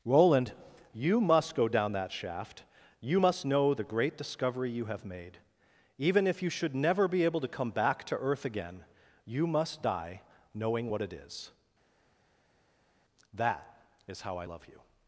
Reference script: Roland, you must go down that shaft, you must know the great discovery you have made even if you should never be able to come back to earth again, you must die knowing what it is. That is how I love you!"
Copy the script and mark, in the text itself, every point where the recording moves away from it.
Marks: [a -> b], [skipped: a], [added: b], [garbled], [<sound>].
Roland, you must go down that shaft, you must know the great discovery you have made even if you should never be able to come back to earth again, you must die knowing what it is. That is how I love you!"